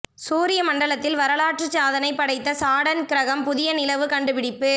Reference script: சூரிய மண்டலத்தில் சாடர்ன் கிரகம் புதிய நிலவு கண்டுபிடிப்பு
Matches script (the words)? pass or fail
fail